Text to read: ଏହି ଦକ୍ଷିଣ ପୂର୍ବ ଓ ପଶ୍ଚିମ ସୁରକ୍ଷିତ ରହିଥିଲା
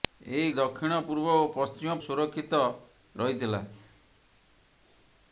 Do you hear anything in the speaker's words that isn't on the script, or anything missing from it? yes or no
no